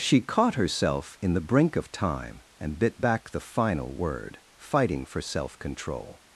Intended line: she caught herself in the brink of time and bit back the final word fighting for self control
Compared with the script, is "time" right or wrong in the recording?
right